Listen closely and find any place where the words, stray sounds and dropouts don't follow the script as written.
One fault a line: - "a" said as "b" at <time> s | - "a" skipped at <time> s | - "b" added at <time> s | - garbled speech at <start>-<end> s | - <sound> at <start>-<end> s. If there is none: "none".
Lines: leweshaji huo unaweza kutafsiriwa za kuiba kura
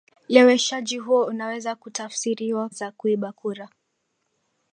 none